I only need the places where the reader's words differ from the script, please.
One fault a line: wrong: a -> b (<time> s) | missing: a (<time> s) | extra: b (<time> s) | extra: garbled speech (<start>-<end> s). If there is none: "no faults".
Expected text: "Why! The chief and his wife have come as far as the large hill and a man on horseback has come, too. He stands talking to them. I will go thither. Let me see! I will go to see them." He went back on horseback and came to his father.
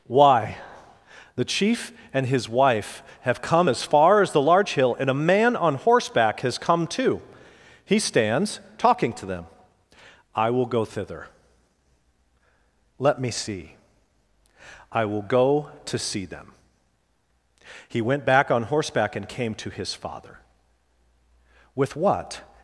extra: With what (21.8 s)